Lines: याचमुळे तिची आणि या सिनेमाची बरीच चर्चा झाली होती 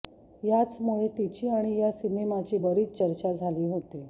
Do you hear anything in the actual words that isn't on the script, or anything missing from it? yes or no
no